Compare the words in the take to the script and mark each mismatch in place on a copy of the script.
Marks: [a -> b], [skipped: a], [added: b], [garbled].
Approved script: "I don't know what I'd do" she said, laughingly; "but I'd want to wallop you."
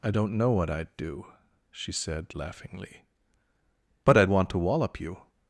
"I don't know what I'd do" she said, laughingly; "but I'd want to wallop you."